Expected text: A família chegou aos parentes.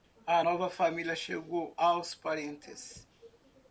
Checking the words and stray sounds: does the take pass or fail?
fail